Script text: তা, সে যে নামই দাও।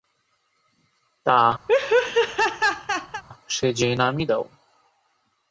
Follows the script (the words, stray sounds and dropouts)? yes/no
no